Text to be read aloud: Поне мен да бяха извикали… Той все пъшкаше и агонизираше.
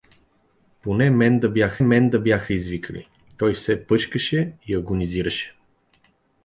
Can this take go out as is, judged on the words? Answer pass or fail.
fail